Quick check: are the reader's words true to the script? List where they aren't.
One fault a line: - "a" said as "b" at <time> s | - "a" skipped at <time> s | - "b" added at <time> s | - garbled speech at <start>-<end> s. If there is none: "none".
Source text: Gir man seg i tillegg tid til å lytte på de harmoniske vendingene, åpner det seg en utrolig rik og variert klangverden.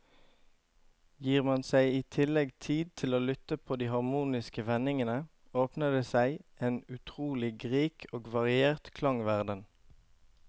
none